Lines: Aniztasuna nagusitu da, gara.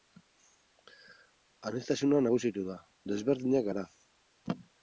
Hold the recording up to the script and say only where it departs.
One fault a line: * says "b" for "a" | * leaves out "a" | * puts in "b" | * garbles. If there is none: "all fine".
* puts in "desberdinak"